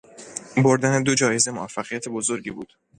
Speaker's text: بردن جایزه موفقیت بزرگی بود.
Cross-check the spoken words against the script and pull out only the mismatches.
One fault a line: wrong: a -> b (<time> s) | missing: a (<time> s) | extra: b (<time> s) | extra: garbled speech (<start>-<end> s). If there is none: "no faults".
extra: دو (1.0 s)